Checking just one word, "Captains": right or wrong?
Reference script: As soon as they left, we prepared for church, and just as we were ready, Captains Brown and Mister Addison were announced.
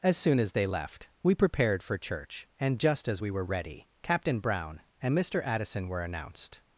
wrong